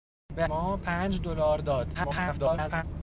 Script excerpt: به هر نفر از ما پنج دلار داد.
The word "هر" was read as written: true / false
false